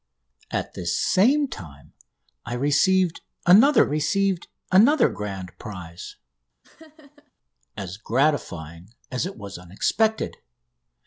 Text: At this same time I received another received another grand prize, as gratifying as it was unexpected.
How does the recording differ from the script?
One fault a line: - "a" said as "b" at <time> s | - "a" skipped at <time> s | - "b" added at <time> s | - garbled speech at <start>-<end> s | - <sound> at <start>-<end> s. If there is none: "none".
- laugh at 6.6-7.3 s